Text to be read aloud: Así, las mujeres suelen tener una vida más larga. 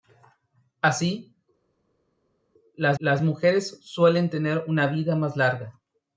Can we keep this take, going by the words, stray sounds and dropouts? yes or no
no